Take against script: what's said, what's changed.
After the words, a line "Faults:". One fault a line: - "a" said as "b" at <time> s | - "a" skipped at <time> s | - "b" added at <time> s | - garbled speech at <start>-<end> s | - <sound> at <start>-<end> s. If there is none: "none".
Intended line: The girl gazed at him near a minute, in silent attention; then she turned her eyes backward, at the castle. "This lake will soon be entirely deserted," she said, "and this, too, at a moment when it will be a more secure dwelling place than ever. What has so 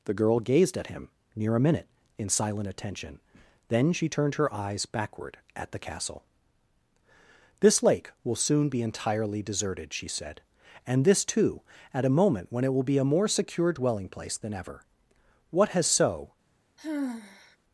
The girl gazed at him near a minute, in silent attention; then she turned her eyes backward, at the castle. "This lake will soon be entirely deserted," she said, "and this, too, at a moment when it will be a more secure dwelling place than ever. What has so
Faults:
- sigh at 16.8-17.6 s